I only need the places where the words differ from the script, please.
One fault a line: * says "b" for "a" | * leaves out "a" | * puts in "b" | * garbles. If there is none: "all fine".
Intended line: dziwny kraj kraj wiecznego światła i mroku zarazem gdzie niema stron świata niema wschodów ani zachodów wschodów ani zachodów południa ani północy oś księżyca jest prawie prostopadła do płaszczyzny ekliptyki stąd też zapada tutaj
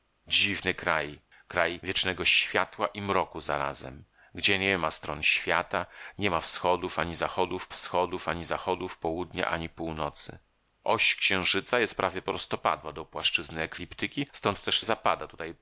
all fine